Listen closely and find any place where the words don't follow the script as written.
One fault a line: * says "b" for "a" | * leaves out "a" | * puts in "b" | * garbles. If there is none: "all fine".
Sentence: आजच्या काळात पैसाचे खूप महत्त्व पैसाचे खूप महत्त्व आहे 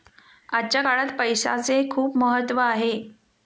* leaves out "पैसाचे खूप महत्त्व"